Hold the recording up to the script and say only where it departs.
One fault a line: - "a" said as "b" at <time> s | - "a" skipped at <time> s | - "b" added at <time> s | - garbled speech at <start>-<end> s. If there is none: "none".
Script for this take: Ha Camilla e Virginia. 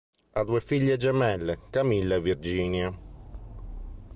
- "due figlie gemelle" added at 0.5 s